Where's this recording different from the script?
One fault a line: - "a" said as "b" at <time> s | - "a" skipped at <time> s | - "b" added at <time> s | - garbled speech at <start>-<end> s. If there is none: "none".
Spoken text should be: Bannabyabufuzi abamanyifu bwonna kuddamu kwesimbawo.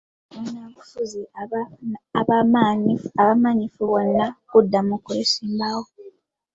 none